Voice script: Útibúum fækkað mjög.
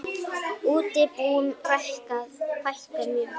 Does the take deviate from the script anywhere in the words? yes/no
no